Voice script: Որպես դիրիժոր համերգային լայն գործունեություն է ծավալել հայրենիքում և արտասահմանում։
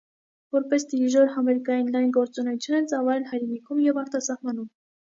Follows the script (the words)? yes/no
yes